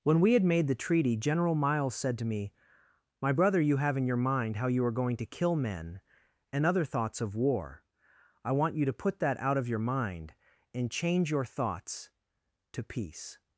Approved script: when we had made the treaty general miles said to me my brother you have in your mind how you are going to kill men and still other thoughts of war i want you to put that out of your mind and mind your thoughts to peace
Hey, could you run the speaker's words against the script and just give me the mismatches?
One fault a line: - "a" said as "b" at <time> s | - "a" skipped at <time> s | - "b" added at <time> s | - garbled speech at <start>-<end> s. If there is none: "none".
- "still" skipped at 6.7 s
- "mind" said as "change" at 10.9 s